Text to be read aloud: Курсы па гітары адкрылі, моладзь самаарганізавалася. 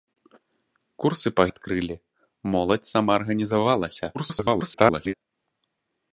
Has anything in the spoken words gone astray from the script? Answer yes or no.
yes